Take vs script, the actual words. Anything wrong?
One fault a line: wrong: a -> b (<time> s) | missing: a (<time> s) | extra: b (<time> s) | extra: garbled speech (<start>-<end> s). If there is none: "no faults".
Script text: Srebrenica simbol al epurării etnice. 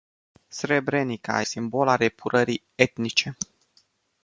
no faults